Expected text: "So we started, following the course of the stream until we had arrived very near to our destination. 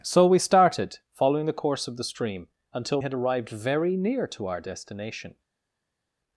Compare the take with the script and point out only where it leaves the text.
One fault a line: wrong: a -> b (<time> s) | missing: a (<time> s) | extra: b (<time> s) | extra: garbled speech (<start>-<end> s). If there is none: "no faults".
missing: we (3.0 s)